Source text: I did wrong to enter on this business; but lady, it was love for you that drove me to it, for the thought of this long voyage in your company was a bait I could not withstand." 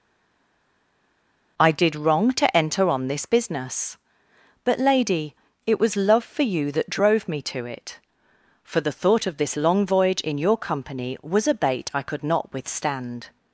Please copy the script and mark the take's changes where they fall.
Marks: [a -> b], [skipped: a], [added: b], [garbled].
I did wrong to enter on this business; but lady, it was love for you that drove me to it, for the thought of this long voyage in your company was a bait I could not withstand."